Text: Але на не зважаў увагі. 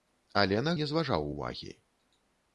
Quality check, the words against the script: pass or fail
pass